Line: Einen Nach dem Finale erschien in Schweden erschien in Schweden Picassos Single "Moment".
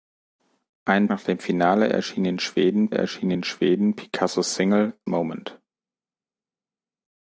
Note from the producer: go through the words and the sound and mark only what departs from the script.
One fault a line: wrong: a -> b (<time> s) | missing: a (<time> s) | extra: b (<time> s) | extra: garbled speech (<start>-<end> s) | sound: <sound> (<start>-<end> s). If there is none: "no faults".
no faults